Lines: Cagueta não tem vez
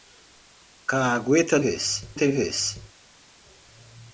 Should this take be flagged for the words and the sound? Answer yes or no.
yes